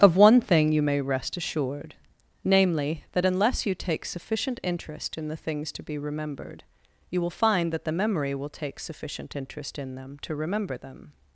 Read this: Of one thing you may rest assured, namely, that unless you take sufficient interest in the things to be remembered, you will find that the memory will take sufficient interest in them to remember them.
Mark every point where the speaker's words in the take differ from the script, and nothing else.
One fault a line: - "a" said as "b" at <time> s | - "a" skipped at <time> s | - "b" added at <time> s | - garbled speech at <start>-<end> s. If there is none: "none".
none